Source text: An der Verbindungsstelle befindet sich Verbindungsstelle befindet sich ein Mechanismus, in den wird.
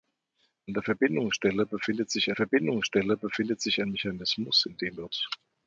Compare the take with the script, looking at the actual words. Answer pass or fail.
pass